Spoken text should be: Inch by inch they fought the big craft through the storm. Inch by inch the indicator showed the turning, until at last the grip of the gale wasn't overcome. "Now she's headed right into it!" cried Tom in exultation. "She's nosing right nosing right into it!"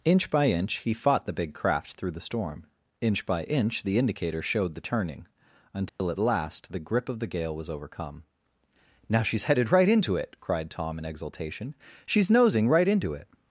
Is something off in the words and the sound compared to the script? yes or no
yes